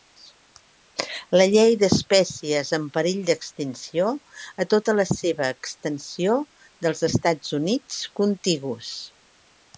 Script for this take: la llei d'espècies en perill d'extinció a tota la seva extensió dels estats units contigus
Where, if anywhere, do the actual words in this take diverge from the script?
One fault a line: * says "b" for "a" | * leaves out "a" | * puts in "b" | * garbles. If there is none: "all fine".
all fine